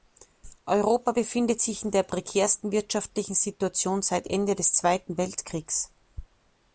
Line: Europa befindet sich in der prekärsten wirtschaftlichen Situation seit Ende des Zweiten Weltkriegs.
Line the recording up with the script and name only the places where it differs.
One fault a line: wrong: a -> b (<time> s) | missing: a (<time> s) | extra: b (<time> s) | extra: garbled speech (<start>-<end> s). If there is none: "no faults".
no faults